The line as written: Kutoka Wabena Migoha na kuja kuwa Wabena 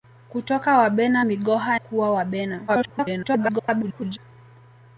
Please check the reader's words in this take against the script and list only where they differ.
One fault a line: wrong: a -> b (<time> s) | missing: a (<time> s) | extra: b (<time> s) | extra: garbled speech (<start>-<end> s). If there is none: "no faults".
missing: na kuja (1.8 s)
extra: garbled speech (2.7-4.2 s)